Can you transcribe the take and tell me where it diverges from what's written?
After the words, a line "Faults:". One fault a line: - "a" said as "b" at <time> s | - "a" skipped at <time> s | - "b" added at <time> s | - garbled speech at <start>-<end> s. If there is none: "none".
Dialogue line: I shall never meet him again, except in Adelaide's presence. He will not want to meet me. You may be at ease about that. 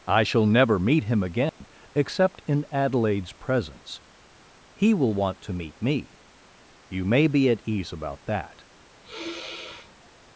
I shall never meet him again, except in Adelaide's presence. He will want to meet me. You may be at ease about that.
Faults:
- "not" skipped at 5.1 s